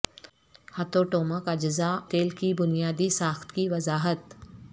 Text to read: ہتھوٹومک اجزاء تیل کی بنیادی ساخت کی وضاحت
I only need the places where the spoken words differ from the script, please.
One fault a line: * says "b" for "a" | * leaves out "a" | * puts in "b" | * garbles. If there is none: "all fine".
all fine